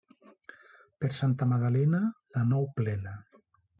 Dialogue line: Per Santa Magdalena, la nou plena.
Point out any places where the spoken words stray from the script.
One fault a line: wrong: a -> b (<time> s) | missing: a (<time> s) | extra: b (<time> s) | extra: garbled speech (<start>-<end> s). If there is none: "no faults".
no faults